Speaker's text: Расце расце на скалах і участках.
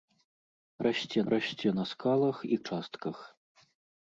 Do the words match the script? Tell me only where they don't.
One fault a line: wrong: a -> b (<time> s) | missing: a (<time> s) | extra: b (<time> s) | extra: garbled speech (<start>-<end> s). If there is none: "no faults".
no faults